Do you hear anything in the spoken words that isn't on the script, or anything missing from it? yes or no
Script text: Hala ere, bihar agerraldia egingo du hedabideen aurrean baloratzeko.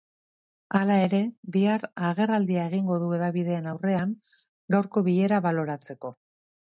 yes